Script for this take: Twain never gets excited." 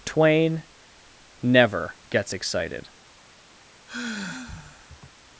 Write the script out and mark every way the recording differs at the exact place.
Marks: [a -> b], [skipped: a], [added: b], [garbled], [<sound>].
Twain never gets excited." [sigh]